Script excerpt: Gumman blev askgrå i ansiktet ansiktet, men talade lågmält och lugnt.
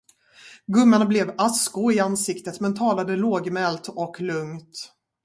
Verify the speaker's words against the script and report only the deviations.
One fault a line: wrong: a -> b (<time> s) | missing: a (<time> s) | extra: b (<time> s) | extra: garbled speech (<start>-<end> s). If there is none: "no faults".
missing: ansiktet (2.6 s)